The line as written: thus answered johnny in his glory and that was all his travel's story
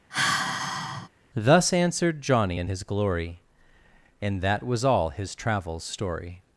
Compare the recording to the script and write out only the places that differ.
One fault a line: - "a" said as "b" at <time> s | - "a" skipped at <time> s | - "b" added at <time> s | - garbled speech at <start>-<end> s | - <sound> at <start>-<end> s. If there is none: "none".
- sigh at 0.1-1.1 s